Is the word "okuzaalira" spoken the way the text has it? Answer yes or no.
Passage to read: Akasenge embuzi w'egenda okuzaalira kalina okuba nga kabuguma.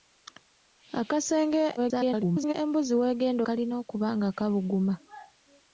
no